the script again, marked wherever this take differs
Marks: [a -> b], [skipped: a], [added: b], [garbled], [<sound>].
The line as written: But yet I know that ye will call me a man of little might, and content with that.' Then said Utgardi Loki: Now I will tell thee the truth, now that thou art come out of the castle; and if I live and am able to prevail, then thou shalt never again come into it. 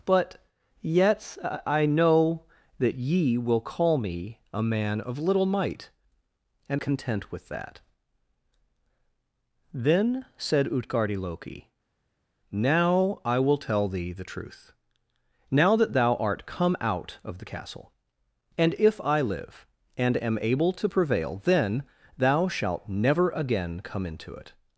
But yet I know that ye will call me a man of little might, and content with that.' Then said Utgardi Loki: Now I will tell thee the truth, now that thou art come out of the castle; and if I live and am able to prevail, then thou shalt never again come into it.